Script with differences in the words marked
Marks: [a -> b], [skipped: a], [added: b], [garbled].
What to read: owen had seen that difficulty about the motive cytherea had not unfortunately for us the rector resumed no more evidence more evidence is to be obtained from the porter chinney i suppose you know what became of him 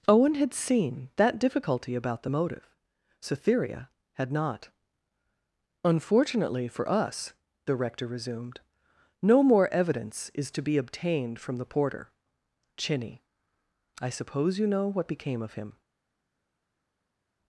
owen had seen that difficulty about the motive cytherea had not unfortunately for us the rector resumed no more evidence [skipped: more evidence] is to be obtained from the porter chinney i suppose you know what became of him